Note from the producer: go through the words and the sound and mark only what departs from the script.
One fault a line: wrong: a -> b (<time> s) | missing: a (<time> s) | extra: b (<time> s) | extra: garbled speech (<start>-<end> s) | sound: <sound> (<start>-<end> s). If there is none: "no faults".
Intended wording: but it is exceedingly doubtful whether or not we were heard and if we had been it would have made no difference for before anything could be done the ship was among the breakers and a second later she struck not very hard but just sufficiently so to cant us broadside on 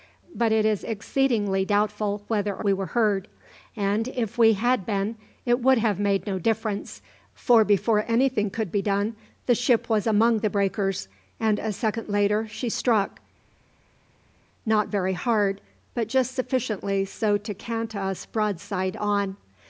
missing: not (2.6 s)